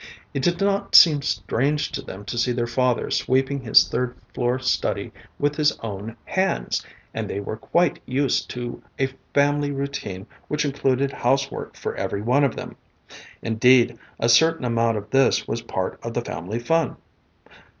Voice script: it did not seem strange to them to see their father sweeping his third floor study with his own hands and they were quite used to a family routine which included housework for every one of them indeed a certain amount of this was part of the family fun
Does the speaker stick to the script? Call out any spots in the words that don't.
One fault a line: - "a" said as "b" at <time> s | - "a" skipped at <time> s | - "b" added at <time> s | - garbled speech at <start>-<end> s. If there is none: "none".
none